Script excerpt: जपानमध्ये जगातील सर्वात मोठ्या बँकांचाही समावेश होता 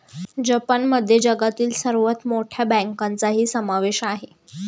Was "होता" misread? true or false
true